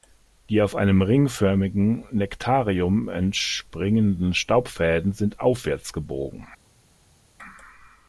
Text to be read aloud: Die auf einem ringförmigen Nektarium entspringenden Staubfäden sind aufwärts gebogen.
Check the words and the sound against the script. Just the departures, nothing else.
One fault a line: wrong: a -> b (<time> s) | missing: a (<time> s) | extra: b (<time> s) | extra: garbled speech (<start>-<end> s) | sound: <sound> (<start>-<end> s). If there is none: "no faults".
no faults